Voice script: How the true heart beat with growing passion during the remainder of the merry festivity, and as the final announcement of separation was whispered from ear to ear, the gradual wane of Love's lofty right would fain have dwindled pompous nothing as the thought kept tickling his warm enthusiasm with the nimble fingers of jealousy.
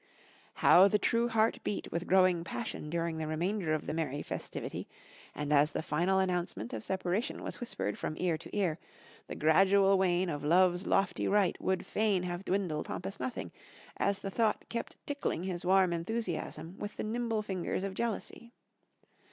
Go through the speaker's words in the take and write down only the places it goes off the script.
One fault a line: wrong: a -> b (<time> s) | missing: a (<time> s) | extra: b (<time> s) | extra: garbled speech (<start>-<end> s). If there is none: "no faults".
no faults